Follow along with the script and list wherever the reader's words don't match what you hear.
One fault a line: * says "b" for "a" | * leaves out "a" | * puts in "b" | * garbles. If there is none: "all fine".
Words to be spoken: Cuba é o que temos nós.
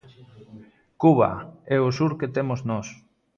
* puts in "sur"